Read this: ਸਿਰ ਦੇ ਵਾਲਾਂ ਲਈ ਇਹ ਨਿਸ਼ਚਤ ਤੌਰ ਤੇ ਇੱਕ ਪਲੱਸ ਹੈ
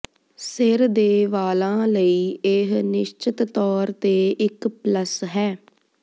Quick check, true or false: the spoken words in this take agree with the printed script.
true